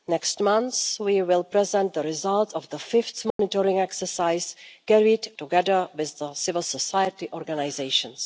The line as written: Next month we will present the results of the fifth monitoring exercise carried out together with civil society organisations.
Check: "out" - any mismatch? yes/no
yes